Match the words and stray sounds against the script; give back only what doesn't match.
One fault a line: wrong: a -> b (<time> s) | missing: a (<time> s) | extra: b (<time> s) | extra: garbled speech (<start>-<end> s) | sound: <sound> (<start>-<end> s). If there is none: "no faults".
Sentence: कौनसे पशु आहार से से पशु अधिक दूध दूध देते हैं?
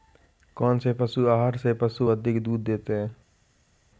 missing: से (1.7 s)
missing: दूध (2.6 s)